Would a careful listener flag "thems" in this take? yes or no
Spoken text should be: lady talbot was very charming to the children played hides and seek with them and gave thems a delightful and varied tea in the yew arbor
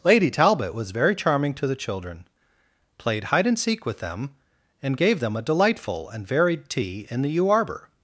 yes